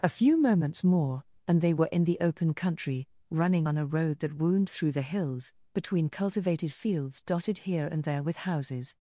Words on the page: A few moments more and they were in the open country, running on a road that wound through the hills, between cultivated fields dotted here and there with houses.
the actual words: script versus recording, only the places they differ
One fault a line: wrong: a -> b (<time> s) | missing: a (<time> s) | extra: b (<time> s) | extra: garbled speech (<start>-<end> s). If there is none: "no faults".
no faults